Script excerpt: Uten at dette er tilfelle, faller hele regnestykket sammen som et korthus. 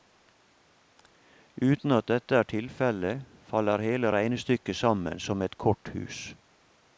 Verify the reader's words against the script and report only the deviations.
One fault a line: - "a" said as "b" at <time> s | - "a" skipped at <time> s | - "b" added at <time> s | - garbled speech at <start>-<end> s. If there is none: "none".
none